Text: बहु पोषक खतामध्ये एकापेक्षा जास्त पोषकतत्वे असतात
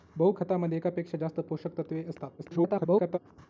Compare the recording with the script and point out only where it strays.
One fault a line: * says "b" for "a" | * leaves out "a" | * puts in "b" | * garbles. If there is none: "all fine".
* leaves out "पोषक"
* garbles